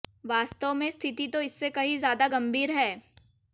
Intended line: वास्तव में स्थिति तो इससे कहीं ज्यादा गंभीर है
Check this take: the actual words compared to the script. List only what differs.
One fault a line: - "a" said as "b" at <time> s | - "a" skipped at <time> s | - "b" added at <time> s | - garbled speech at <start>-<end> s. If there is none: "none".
none